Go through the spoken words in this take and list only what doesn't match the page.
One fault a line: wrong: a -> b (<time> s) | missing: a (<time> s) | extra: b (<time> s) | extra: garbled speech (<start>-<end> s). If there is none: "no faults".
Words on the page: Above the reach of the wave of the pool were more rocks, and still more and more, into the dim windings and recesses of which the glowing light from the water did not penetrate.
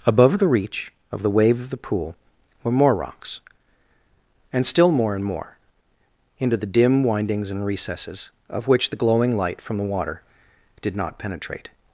no faults